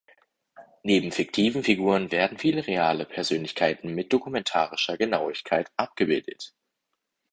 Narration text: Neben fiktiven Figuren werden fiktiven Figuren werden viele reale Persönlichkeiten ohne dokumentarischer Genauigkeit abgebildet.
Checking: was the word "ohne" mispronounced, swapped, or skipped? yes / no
yes